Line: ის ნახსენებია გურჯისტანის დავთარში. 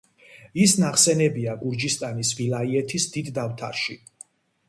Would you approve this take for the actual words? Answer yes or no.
no